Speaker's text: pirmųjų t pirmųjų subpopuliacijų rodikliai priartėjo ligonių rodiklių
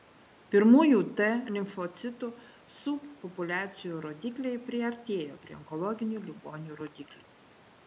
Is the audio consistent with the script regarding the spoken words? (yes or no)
no